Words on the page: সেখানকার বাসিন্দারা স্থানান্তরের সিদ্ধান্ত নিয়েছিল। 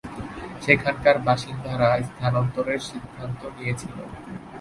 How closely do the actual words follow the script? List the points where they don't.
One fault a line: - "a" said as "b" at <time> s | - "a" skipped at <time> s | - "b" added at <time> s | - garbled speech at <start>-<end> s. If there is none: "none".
none